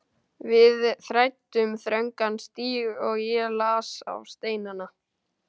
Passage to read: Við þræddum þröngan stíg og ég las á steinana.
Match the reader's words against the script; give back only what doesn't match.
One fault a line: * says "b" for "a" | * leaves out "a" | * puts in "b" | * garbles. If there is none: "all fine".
all fine